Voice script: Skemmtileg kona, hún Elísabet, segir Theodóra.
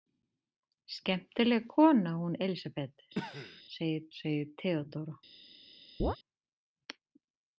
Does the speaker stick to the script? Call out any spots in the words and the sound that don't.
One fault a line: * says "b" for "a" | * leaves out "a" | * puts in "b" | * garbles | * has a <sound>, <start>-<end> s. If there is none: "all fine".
* has a cough, 3.1-3.6 s
* puts in "segir"
* has a chirp, 6.0-6.2 s